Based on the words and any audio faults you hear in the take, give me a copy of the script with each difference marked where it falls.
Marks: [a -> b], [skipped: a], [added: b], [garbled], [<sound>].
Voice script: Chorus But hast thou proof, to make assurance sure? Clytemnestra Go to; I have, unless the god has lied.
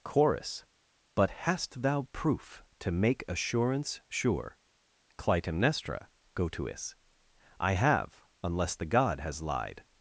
Chorus But hast thou proof, to make assurance sure? Clytemnestra Go to; [added: is] I have, unless the god has lied.